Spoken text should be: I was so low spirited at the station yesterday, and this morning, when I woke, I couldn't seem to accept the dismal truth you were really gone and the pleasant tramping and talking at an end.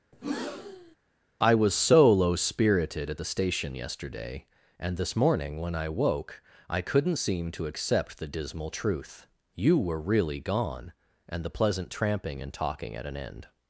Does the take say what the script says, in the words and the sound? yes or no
no